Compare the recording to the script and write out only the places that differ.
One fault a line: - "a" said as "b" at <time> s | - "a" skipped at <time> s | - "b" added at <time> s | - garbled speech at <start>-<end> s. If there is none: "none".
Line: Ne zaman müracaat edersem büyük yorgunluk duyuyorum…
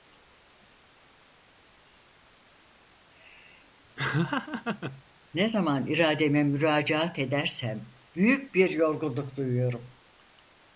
- "irademe" added at 5.9 s
- "bir" added at 8.5 s